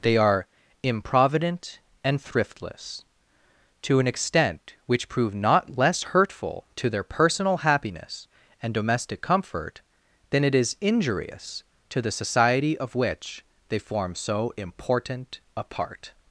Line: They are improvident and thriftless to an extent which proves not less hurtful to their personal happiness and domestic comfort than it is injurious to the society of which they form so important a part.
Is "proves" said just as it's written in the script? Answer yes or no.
no